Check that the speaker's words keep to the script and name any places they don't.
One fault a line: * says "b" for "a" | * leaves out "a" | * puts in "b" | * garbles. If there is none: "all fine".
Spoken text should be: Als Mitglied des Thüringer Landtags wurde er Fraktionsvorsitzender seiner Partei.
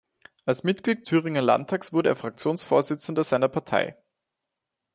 * leaves out "des"